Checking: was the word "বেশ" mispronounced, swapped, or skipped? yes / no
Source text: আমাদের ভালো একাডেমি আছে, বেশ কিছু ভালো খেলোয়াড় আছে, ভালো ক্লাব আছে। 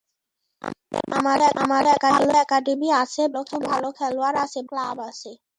yes